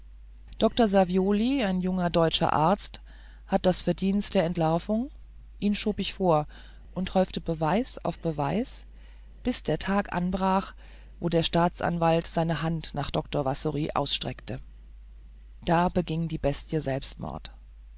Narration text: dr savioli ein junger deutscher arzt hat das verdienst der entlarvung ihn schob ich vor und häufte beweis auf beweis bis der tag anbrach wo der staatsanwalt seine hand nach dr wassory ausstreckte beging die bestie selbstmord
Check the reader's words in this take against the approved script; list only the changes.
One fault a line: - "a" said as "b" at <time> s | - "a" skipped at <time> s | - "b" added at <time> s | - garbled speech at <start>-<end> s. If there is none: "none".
- "da" added at 15.7 s